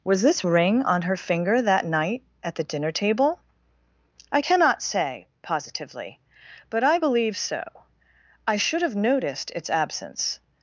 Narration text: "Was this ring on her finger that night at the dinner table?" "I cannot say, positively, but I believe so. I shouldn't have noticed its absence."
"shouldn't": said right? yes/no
no